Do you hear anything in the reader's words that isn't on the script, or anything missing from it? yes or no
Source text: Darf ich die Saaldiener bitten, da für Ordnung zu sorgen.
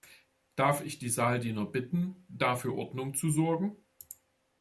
no